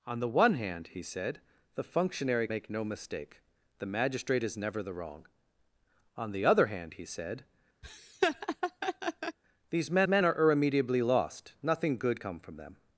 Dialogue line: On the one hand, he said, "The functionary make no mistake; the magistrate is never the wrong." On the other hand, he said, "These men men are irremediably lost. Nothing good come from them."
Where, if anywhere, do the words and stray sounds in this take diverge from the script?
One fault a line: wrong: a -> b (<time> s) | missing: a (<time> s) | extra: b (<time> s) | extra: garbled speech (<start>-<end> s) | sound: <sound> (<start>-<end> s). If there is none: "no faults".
sound: laugh (7.8-9.4 s)